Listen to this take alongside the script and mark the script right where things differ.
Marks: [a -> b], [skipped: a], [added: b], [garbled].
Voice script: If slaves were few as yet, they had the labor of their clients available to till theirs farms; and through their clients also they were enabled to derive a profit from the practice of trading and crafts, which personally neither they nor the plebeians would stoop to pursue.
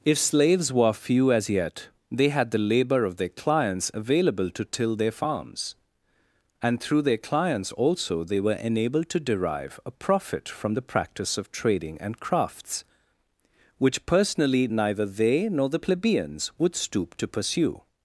If slaves were few as yet, they had the labor of their clients available to till [theirs -> their] farms; and through their clients also they were enabled to derive a profit from the practice of trading and crafts, which personally neither they nor the plebeians would stoop to pursue.